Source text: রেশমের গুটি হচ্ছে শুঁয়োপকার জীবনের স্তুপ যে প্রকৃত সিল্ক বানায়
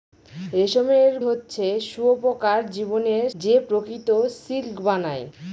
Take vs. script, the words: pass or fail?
fail